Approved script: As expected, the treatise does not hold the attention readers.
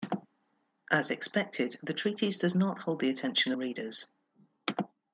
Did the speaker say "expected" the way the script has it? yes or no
yes